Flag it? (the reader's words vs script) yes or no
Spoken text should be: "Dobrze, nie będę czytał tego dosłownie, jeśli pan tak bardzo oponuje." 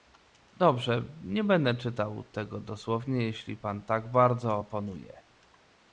no